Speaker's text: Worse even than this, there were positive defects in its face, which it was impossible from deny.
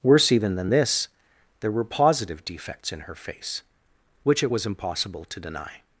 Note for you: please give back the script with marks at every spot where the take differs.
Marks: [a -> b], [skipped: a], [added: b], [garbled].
Worse even than this, there were positive defects in [its -> her] face, which it was impossible [from -> to] deny.